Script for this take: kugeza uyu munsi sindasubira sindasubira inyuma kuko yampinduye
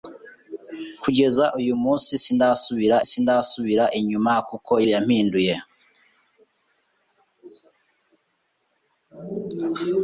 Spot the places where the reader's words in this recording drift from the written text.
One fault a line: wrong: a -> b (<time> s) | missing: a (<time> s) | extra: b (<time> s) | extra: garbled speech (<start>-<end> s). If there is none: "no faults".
no faults